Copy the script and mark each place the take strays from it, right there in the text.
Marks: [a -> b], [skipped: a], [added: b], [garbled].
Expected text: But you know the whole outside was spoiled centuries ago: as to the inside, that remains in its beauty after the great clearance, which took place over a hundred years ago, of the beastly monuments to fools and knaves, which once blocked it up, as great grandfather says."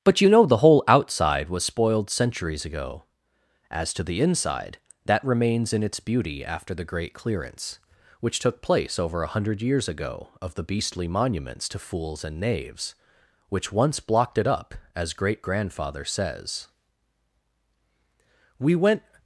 But you know the whole outside was spoiled centuries ago: as to the inside, that remains in its beauty after the great clearance, which took place over a hundred years ago, of the beastly monuments to fools and knaves, which once blocked it up, as great grandfather says." [added: We went]